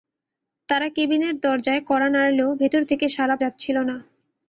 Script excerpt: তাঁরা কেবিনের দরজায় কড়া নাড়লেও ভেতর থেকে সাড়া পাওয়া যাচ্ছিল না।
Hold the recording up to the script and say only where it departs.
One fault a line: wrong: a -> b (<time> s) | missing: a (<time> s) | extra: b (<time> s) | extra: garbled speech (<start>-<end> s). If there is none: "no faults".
missing: পাওয়া (3.4 s)